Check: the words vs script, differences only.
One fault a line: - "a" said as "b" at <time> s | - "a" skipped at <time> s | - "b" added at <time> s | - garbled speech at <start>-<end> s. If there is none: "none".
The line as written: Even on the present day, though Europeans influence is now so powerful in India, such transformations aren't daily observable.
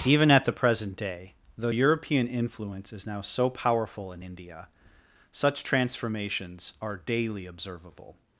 - "on" said as "at" at 0.3 s
- "Europeans" said as "European" at 1.7 s
- "aren't" said as "are" at 6.8 s